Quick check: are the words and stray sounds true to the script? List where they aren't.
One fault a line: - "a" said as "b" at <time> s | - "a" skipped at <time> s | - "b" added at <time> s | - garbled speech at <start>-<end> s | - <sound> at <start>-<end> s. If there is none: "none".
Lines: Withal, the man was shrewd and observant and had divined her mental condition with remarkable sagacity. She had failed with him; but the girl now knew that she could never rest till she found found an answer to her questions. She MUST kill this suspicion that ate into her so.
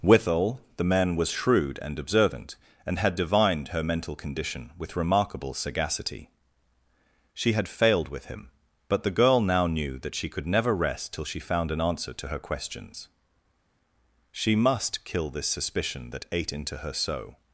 - "found" skipped at 11.7 s